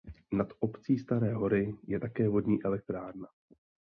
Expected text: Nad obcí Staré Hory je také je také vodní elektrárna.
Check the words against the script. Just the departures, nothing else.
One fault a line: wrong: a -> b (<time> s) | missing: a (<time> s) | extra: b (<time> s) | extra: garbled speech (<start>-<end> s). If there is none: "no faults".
missing: je také (2.3 s)